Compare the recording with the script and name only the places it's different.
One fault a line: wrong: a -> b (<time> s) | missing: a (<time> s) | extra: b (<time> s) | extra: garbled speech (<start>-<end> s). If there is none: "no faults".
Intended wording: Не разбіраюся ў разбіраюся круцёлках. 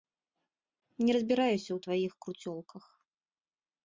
wrong: разбіраюся -> тваіх (1.9 s)